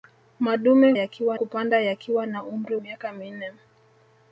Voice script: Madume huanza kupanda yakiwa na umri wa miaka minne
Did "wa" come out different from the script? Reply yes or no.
yes